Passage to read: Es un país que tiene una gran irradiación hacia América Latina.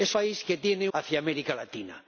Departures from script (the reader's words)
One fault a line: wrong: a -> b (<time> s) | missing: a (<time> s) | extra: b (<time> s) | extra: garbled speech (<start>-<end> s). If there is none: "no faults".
missing: un (0.1 s)
missing: una gran irradiación (0.9 s)